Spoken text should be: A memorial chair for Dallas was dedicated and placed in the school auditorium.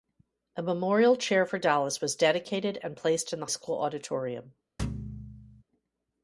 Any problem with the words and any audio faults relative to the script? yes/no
yes